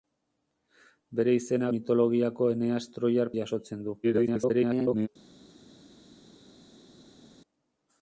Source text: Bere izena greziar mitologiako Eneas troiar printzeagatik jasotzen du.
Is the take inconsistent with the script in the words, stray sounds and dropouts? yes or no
yes